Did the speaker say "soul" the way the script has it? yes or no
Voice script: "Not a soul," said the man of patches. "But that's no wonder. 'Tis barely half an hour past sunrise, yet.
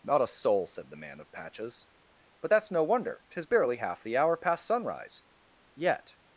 yes